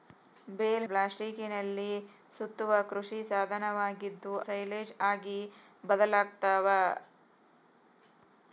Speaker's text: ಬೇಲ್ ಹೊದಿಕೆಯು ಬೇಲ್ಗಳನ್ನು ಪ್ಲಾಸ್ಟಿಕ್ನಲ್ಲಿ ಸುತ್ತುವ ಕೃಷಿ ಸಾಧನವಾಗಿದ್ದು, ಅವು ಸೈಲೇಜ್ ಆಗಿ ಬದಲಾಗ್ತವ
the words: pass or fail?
fail